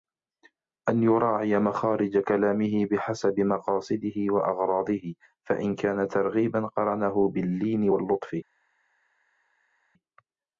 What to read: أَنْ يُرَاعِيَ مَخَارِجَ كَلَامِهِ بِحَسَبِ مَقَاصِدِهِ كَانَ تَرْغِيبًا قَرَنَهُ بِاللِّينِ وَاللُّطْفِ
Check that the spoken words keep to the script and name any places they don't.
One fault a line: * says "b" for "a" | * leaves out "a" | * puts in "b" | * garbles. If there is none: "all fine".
* puts in "وَأَغْرَاضِهِ فَإِنْ"